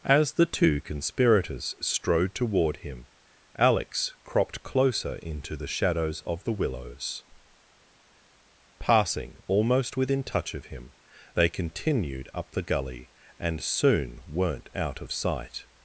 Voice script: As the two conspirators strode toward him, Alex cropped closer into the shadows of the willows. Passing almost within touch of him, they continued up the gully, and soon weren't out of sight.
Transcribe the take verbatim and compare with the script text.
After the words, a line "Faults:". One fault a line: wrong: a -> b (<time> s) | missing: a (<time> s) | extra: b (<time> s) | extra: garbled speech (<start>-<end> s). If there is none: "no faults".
As the two conspirators strode toward him, Alex cropped closer into the shadows of the willows. Passing almost within touch of him, they continued up the gully, and soon weren't out of sight.
Faults:
no faults